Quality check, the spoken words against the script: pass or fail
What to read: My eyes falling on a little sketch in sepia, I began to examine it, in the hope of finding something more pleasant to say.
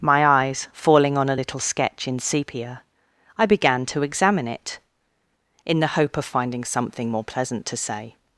pass